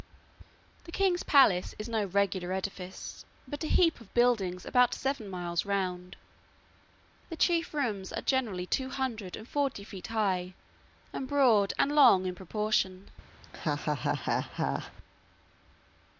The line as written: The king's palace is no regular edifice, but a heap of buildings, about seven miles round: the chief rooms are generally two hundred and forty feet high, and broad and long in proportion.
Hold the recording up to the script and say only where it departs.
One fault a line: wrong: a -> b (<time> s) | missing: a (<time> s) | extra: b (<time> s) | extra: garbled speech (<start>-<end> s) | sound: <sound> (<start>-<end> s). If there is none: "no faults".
sound: laugh (13.4-14.9 s)